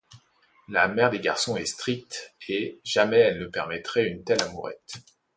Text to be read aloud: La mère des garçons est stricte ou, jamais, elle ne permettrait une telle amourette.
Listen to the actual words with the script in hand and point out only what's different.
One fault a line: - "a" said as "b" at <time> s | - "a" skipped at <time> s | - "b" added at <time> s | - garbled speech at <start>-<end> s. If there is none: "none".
- "ou" said as "et" at 2.5 s